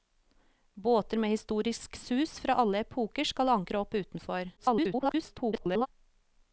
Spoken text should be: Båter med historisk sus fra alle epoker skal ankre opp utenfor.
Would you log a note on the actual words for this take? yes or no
yes